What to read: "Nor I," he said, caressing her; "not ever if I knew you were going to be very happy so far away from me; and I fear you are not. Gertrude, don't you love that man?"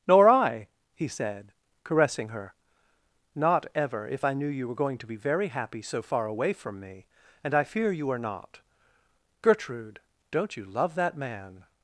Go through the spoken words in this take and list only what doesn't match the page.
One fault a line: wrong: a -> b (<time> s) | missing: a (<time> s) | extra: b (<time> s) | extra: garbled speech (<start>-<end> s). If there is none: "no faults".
no faults